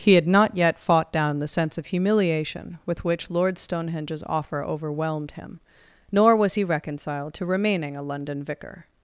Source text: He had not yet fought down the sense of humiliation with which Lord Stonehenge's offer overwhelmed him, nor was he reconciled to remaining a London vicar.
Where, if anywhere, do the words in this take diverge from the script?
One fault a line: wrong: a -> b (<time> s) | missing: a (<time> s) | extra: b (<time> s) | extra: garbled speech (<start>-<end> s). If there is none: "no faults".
no faults